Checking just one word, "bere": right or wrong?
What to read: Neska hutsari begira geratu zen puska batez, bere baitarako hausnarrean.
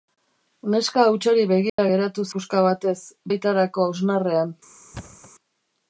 wrong